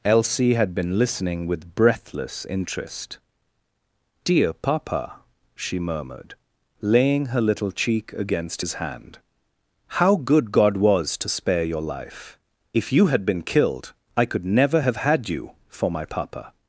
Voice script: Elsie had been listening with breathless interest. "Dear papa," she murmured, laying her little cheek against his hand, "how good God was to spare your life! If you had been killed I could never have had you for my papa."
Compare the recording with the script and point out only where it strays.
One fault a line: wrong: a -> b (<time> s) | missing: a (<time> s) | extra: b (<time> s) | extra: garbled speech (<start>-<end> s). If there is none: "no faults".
no faults